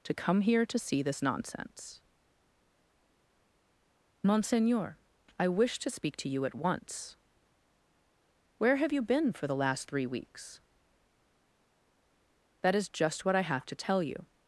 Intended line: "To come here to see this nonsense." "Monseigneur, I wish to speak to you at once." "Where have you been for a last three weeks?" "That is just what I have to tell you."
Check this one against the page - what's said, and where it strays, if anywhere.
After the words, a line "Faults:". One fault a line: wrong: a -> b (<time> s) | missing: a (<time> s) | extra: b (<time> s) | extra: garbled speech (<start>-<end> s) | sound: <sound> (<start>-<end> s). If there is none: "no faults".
"To come here to see this nonsense." "Monseigneur, I wish to speak to you at once." "Where have you been for the last three weeks?" "That is just what I have to tell you."
Faults:
wrong: a -> the (9.4 s)